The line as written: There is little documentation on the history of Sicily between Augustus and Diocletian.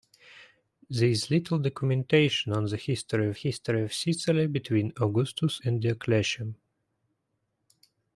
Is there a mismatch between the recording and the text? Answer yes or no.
yes